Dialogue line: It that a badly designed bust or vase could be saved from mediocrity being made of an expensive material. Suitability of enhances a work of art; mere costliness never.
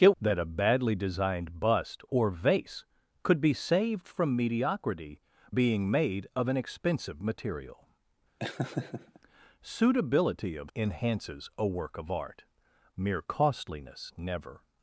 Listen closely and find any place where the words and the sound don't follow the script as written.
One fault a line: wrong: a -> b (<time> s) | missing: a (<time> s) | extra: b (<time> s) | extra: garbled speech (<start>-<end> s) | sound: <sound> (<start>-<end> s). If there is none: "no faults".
sound: laugh (8.4-9.2 s)